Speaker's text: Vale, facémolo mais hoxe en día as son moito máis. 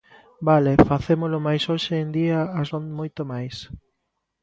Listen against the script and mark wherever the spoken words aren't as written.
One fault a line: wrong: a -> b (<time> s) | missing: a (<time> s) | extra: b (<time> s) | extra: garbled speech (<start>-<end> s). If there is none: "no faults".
no faults